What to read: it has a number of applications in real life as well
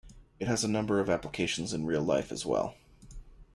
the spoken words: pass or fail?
pass